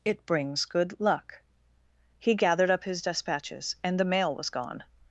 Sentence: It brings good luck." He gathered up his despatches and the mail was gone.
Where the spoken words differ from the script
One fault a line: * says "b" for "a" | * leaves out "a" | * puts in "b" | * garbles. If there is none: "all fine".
all fine